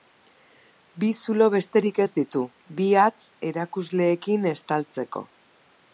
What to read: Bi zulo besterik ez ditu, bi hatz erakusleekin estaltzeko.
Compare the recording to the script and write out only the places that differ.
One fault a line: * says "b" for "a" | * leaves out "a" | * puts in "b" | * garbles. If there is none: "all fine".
all fine